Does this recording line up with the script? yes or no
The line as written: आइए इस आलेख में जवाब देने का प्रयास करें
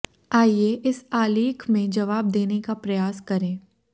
yes